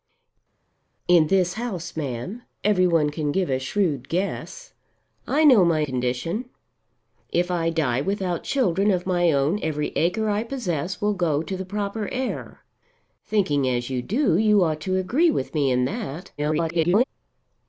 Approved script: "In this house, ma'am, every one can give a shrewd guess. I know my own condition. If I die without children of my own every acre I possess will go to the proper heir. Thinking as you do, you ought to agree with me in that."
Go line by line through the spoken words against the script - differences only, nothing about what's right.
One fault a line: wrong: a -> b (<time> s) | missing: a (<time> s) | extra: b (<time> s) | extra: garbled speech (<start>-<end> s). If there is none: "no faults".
missing: own (5.9 s)
extra: garbled speech (16.4-17.0 s)